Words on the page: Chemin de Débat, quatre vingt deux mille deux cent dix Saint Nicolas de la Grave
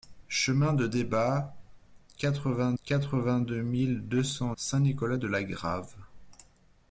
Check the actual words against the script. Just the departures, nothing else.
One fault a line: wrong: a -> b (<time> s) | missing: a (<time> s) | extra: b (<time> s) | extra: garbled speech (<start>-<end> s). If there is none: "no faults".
extra: quatre vingt (2.8 s)
missing: dix (4.5 s)